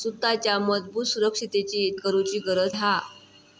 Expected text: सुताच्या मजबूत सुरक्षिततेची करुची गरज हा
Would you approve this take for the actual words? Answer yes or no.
yes